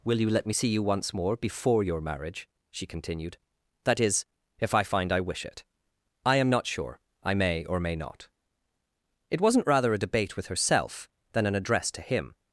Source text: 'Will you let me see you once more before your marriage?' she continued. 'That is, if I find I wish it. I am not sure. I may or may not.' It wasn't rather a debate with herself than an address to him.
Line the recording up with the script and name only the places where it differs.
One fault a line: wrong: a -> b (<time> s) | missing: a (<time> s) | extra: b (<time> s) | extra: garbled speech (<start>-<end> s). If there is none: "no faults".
no faults